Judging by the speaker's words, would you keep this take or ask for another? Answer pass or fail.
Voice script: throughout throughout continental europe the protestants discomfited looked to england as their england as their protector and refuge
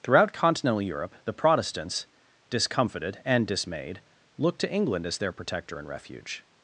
fail